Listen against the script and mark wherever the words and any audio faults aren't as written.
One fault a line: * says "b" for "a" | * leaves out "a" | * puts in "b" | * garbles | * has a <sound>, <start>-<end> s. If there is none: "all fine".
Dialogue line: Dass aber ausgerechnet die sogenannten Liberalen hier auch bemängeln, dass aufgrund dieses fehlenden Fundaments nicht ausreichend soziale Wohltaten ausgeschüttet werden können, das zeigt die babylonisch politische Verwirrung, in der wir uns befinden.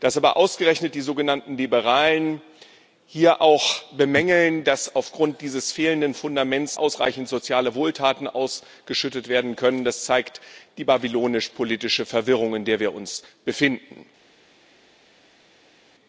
* leaves out "nicht"